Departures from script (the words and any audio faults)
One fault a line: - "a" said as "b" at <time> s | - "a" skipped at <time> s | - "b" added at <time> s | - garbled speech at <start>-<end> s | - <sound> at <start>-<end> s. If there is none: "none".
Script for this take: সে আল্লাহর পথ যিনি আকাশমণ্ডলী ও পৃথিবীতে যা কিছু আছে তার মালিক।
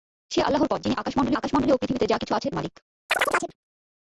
- "আকাশমণ্ডলী" added at 1.4 s
- "তার" skipped at 2.5 s
- chirp at 3.1-3.6 s